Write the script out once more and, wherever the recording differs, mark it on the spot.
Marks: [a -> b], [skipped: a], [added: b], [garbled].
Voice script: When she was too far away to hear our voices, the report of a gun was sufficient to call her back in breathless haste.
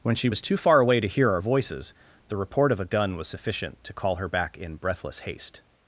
When she was too far away to hear our voices, the report of a gun was sufficient to call her back in breathless haste.